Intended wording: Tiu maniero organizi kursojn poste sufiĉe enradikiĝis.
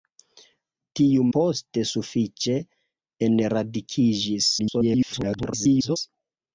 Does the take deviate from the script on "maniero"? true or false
true